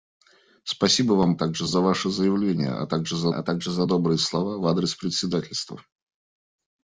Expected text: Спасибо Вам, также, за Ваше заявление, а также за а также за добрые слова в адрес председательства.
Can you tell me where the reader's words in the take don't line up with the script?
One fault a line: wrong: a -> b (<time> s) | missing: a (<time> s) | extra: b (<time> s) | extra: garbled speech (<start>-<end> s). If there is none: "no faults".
no faults